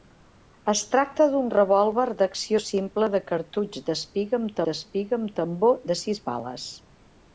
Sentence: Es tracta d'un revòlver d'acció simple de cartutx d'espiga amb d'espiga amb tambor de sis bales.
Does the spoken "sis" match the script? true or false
true